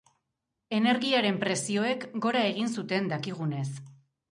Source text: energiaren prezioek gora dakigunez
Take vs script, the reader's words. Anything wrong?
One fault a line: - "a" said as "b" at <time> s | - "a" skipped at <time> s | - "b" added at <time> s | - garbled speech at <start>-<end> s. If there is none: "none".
- "egin zuten" added at 2.5 s